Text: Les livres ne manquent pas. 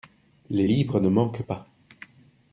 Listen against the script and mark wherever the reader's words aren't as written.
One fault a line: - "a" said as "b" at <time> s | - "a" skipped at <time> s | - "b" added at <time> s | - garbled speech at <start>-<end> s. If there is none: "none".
none